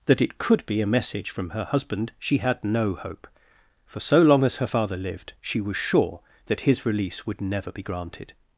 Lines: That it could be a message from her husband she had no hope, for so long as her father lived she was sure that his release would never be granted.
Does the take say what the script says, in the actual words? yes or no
yes